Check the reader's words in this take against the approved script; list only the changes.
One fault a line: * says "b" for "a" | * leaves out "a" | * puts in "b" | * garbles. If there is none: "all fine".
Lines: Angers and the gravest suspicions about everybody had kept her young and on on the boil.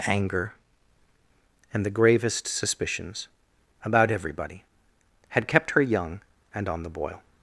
* says "Anger" for "Angers"
* leaves out "on"